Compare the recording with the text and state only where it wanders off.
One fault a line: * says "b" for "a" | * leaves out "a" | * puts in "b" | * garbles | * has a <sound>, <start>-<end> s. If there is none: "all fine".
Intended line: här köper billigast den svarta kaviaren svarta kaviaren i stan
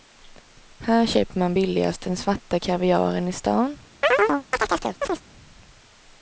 * puts in "man"
* leaves out "svarta kaviaren"
* has a chirp, 4.0-5.2 s